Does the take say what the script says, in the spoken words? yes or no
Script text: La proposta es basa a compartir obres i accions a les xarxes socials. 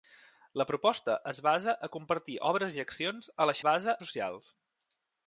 no